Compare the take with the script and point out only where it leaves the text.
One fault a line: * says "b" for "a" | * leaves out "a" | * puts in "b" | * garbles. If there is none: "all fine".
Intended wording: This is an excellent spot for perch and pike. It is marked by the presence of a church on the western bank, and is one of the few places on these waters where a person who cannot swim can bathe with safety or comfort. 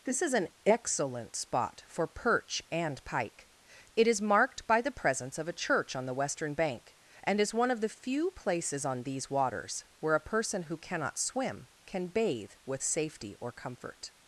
all fine